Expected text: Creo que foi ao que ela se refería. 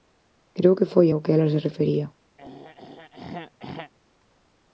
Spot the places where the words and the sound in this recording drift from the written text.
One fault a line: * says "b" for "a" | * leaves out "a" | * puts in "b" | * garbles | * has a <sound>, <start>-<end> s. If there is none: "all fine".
* has a throat clearing, 2.4-3.9 s